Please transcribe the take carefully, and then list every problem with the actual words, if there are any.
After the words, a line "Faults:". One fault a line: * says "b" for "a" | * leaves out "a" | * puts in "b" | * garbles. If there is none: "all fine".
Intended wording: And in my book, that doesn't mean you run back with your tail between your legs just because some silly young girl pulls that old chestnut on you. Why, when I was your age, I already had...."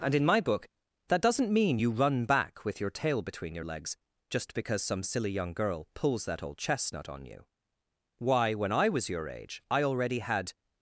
And in my book, that doesn't mean you run back with your tail between your legs just because some silly young girl pulls that old chestnut on you. Why, when I was your age, I already had...."
Faults:
all fine